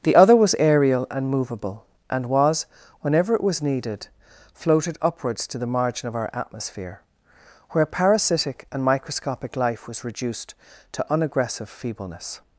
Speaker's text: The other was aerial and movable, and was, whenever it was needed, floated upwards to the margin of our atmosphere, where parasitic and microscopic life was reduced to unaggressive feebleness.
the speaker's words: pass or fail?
pass